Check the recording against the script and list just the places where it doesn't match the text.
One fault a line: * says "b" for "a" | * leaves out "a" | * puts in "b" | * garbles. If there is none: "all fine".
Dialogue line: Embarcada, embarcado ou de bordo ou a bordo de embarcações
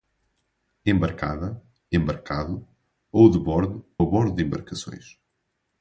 * leaves out "ou"